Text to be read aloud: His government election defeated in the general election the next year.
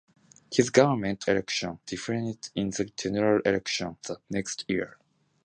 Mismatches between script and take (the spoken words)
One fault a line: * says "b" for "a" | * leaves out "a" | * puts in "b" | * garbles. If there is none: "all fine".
all fine